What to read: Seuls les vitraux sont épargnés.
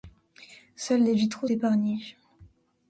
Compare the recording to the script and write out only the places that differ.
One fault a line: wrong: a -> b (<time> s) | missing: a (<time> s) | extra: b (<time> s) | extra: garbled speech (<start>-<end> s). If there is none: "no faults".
missing: sont (1.5 s)